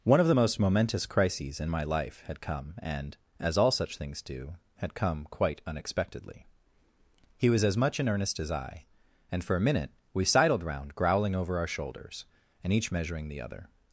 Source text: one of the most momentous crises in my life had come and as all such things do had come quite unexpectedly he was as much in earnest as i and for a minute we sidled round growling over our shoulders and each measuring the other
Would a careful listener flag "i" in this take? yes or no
no